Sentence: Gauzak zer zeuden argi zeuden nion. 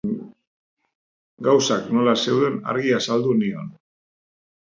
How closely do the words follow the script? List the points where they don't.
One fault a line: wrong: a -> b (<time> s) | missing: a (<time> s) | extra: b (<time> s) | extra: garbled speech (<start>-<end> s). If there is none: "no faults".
wrong: zer -> nola (2.0 s)
wrong: zeuden -> azaldu (3.0 s)